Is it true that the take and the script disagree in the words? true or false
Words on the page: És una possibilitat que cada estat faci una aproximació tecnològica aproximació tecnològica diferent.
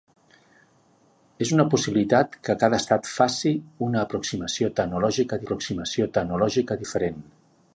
false